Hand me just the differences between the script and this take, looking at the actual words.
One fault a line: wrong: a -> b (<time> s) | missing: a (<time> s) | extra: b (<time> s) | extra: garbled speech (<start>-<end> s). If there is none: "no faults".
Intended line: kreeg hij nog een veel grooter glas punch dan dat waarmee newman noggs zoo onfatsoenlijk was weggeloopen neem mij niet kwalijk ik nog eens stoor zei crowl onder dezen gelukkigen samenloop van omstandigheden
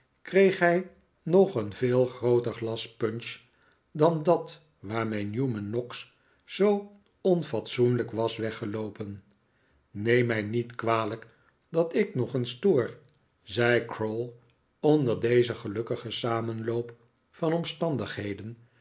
extra: dat (11.7 s)